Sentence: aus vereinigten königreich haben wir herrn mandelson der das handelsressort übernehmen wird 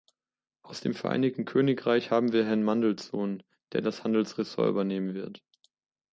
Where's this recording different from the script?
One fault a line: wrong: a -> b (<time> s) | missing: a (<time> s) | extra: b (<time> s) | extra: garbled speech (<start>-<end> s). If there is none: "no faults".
extra: dem (0.8 s)